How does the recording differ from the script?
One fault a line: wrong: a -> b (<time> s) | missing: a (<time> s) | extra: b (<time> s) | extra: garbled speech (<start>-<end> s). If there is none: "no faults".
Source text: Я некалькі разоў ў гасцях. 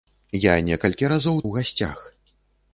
no faults